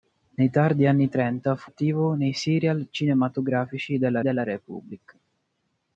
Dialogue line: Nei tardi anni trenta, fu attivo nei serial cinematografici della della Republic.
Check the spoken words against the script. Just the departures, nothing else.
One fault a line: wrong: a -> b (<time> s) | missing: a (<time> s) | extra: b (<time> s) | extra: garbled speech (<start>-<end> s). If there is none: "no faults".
no faults